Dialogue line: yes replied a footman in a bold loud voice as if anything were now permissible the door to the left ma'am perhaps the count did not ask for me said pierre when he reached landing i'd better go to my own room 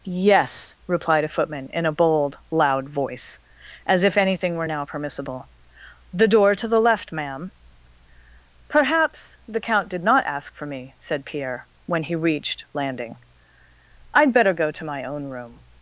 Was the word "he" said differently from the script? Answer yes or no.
no